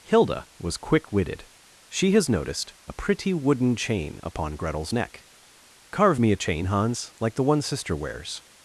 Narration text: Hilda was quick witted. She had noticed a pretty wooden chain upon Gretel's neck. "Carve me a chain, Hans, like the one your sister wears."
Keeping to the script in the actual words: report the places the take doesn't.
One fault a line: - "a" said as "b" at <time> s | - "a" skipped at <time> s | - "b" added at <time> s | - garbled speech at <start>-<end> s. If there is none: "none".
- "had" said as "has" at 2.1 s
- "your" skipped at 7.6 s